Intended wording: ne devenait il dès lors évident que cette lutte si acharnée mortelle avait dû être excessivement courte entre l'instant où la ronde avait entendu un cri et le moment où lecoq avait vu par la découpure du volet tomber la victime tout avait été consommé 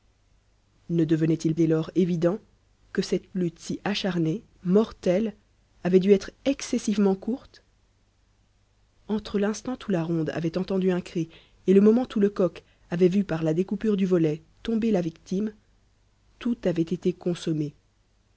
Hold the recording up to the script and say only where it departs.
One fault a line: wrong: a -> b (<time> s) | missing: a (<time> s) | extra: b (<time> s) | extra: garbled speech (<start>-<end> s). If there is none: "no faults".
no faults